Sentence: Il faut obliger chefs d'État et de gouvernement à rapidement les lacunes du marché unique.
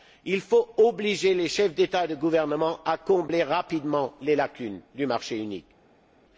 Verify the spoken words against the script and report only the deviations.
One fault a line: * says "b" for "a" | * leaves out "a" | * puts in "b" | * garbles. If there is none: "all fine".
* puts in "les"
* puts in "combler"